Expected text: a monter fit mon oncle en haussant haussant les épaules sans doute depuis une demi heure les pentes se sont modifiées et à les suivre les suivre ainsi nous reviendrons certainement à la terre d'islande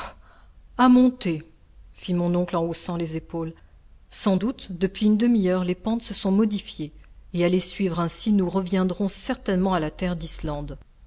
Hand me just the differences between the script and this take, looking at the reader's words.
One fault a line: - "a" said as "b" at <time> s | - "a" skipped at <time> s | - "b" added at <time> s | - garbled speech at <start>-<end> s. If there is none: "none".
- "haussant" skipped at 3.0 s
- "les suivre" skipped at 8.0 s